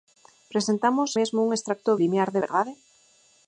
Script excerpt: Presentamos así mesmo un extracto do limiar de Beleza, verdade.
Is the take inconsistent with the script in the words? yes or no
yes